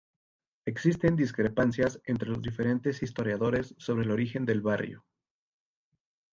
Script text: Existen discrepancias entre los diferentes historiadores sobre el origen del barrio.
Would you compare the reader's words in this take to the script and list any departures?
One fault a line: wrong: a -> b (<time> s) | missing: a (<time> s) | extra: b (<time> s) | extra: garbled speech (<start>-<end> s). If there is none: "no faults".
no faults